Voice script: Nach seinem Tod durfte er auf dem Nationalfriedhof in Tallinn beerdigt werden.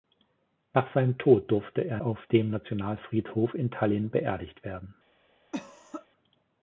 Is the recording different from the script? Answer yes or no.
no